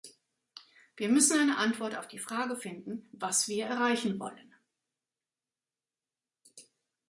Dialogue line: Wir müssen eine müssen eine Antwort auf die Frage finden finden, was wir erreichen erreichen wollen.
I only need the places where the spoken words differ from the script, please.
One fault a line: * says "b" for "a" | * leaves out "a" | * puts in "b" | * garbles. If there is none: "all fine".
* leaves out "müssen eine"
* leaves out "finden"
* leaves out "erreichen"